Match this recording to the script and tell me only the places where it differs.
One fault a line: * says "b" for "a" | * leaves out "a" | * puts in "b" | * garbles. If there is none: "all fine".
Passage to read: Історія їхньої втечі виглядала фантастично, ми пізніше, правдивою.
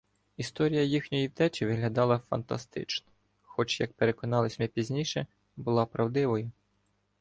* puts in "хоч як переконалися"
* puts in "була"